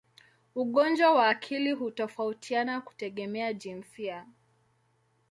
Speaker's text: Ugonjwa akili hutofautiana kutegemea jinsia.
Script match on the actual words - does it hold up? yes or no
no